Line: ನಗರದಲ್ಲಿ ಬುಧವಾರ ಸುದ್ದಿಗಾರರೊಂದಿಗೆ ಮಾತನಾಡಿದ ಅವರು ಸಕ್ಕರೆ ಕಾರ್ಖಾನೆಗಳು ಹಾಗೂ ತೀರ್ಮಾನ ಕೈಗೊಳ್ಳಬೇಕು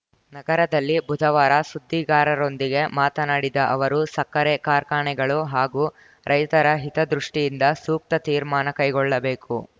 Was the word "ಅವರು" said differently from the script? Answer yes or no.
no